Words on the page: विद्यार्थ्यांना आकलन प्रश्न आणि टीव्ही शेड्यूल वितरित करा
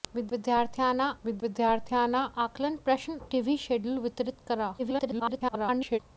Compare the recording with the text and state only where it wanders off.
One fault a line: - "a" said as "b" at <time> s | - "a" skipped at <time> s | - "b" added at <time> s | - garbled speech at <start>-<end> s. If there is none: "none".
- "विद्यार्थ्यांना" added at 1.2 s
- "आणि" skipped at 3.2 s
- garbled speech at 4.8-6.0 s